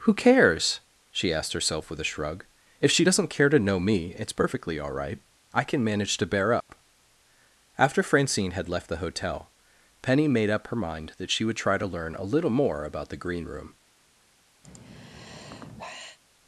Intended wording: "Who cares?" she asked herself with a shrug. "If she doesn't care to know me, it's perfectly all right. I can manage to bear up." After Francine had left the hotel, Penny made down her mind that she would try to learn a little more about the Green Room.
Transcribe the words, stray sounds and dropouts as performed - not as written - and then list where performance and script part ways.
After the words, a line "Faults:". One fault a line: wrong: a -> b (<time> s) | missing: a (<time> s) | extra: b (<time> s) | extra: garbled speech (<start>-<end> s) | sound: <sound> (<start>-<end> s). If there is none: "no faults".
"Who cares?" she asked herself with a shrug. "If she doesn't care to know me, it's perfectly all right. I can manage to bear up." After Francine had left the hotel, Penny made up her mind that she would try to learn a little more about the Green Room.
Faults:
sound: dropout (6.6-6.7 s)
wrong: down -> up (10.5 s)
sound: sigh (14.6-16.2 s)